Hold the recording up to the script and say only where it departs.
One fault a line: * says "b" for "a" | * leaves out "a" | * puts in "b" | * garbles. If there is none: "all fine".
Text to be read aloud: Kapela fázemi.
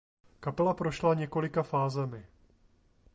* puts in "prošla několika"